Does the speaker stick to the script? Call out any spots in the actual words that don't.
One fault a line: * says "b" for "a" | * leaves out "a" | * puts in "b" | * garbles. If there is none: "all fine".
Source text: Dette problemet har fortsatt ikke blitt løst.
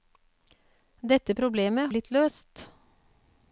* leaves out "har fortsatt ikke"